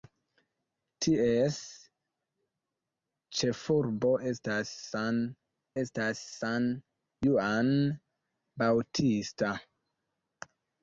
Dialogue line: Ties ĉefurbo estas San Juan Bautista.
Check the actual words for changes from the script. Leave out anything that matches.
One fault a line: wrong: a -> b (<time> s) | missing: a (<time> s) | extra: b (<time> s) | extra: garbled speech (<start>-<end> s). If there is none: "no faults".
extra: estas San (5.8 s)